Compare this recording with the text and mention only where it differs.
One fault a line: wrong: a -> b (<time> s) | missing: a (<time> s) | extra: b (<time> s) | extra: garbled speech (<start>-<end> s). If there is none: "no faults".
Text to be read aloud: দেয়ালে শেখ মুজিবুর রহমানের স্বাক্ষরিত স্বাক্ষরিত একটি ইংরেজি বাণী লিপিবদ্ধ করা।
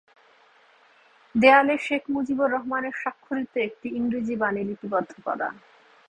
missing: স্বাক্ষরিত (3.5 s)